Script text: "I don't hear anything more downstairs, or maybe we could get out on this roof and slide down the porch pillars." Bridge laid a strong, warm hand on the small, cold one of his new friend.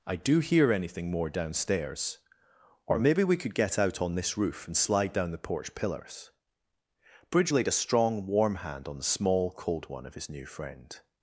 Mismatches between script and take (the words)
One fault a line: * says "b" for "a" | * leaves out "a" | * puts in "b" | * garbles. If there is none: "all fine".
* says "do" for "don't"